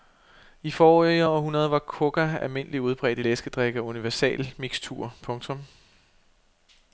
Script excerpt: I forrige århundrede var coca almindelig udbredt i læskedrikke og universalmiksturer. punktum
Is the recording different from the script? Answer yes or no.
no